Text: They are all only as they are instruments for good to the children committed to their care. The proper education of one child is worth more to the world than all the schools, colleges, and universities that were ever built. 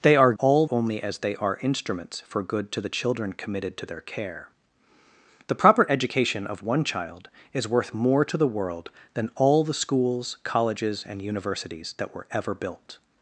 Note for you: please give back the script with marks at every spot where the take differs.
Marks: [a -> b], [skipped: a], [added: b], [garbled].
They are all only as they are instruments for good to the children committed to their care. The proper education of one child is worth more to the world than all the schools, colleges, and universities that were ever built.